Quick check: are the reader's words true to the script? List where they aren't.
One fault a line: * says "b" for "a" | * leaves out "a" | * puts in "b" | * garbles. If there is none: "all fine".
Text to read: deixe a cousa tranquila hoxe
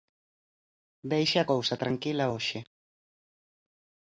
all fine